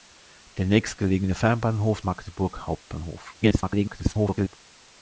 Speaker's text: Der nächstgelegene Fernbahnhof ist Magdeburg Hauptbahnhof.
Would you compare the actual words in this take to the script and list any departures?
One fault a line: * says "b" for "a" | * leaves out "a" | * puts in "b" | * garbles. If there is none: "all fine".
* leaves out "ist"
* garbles